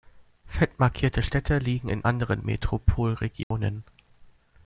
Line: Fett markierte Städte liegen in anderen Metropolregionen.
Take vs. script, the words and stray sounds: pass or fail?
fail